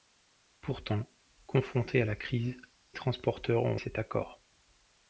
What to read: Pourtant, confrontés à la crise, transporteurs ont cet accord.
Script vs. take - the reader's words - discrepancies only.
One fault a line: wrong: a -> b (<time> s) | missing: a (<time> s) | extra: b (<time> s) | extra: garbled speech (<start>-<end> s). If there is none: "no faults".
no faults